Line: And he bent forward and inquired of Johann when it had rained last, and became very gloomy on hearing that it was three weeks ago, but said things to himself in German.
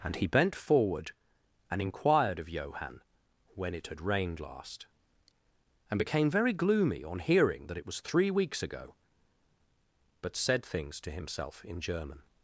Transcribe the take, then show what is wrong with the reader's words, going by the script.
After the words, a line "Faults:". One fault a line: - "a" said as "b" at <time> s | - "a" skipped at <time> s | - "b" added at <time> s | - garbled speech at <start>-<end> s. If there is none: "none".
And he bent forward and inquired of Johann when it had rained last, and became very gloomy on hearing that it was three weeks ago, but said things to himself in German.
Faults:
none